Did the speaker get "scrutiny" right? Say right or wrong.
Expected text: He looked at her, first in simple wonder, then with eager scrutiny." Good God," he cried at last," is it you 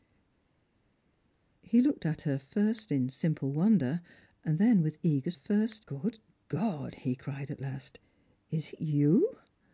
wrong